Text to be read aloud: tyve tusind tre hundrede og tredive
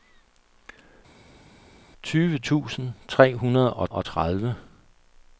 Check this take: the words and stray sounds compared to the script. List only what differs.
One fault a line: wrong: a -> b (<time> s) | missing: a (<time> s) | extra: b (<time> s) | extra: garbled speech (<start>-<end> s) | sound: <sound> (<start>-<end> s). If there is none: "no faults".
extra: og (3.9 s)